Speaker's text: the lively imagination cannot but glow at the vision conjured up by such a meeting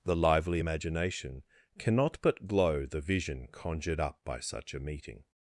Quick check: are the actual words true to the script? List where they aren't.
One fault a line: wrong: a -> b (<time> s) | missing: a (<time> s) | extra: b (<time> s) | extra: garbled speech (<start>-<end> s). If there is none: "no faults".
missing: at (2.9 s)